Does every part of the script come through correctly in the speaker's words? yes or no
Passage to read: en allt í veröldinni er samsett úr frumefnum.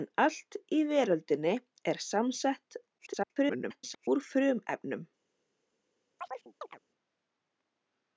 no